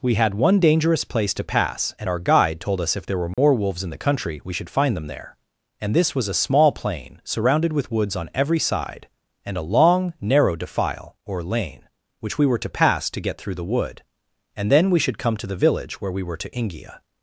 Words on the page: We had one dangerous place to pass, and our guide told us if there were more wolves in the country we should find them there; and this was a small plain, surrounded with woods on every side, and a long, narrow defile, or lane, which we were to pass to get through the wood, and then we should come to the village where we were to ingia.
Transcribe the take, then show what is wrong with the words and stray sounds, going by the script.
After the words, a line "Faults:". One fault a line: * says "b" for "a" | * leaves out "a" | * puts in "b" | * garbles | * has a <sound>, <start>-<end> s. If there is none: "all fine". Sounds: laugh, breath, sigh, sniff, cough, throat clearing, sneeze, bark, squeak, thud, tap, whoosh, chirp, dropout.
We had one dangerous place to pass, and our guide told us if there were more wolves in the country we should find them there; and this was a small plain, surrounded with woods on every side, and a long, narrow defile, or lane, which we were to pass to get through the wood, and then we should come to the village where we were to ingia.
Faults:
* has a dropout, 3.3-3.4 s